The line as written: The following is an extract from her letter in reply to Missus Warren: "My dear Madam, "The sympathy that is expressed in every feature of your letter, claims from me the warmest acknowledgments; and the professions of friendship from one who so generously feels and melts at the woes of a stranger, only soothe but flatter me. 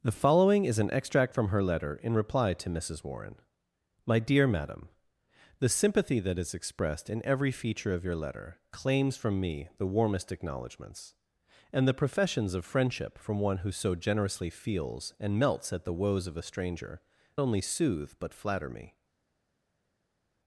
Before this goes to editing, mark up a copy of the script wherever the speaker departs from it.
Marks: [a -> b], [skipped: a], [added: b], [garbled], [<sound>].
The following is an extract from her letter in reply to Missus Warren: "My dear Madam, "The sympathy that is expressed in every feature of your letter, claims from me the warmest acknowledgments; and the professions of friendship from one who so generously feels and melts at the woes of a stranger, only soothe but flatter me.